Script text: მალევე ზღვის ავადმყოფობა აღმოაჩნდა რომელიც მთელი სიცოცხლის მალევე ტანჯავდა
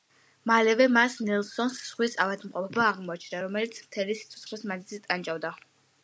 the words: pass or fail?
fail